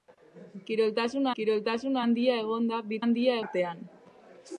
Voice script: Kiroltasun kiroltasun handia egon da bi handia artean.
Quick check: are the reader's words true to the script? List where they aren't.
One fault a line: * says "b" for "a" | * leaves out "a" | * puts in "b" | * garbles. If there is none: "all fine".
all fine